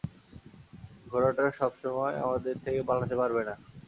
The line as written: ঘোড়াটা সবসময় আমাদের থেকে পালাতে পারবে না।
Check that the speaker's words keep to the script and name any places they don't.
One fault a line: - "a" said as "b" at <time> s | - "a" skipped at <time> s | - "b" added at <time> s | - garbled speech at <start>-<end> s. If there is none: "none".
none